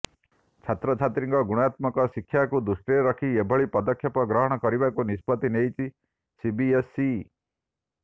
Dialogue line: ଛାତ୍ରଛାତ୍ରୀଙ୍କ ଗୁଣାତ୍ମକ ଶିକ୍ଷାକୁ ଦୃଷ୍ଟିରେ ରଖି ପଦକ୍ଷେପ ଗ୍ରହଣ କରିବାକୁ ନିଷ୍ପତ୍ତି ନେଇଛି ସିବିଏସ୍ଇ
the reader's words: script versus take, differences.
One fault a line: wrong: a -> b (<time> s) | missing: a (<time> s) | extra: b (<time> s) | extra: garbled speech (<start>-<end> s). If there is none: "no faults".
extra: ଏଭଳି (3.4 s)